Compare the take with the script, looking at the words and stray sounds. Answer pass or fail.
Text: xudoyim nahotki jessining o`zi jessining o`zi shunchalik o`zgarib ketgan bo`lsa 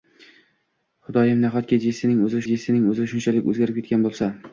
pass